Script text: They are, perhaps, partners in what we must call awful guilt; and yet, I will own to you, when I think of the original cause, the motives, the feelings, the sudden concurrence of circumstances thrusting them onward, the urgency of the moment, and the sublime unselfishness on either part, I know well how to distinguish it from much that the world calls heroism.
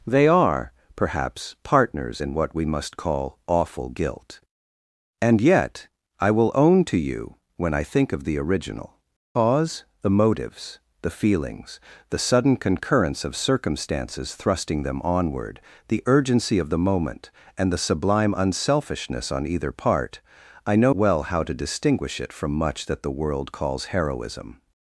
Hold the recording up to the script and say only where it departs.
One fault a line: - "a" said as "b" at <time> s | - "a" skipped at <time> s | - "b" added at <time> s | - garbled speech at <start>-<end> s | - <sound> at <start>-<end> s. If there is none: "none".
none